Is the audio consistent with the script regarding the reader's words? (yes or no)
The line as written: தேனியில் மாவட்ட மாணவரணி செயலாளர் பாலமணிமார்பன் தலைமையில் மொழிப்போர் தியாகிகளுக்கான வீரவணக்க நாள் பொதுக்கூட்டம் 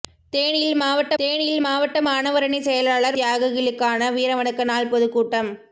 no